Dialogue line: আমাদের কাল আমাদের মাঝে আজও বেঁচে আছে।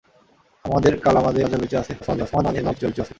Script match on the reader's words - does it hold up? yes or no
no